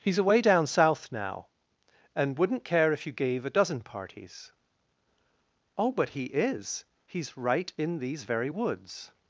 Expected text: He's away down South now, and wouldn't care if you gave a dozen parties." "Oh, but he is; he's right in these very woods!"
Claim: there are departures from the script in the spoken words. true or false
false